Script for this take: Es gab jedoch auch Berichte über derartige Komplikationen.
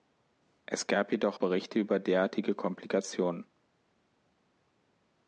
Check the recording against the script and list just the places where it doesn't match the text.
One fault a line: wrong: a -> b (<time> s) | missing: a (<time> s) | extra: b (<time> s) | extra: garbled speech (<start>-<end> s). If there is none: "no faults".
missing: auch (1.4 s)